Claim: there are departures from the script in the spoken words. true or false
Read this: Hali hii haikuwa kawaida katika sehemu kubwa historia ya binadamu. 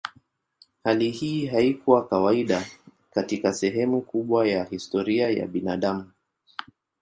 true